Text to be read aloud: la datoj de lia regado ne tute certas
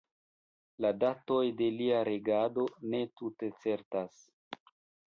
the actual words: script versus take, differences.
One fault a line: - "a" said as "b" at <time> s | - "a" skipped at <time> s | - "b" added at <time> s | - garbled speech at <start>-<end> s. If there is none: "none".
none